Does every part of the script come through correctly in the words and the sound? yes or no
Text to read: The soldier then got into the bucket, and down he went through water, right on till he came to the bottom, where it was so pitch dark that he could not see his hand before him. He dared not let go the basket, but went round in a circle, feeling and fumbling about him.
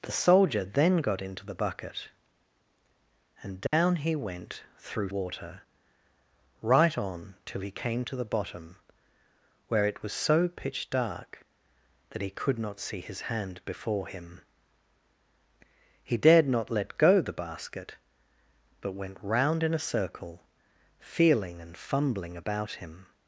no